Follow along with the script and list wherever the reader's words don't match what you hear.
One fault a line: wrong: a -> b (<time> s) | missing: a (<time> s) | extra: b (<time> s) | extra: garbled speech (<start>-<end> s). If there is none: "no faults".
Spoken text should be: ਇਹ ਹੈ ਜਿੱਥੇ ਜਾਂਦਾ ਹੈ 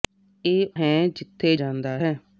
no faults